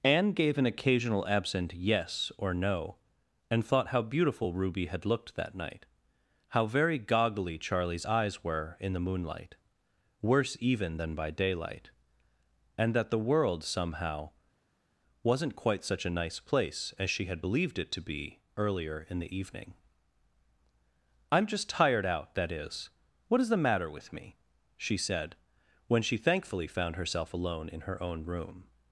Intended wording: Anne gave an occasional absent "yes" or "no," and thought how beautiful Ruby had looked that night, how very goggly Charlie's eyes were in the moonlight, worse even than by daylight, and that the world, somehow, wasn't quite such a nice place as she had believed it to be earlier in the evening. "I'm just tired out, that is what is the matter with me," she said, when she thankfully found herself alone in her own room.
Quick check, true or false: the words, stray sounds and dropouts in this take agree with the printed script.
true